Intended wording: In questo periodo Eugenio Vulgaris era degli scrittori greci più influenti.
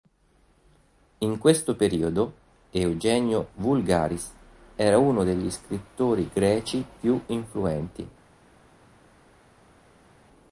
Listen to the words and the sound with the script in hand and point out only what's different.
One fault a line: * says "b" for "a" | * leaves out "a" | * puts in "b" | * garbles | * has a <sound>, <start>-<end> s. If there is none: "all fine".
* puts in "uno"